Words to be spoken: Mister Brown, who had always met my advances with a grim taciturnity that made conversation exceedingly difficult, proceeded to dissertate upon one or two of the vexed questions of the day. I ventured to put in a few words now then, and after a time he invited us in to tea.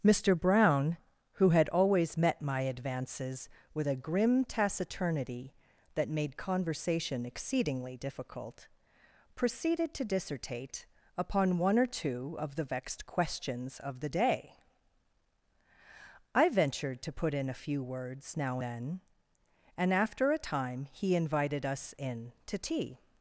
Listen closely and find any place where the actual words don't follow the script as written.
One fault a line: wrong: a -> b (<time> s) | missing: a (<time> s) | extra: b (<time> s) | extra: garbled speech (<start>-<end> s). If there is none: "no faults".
no faults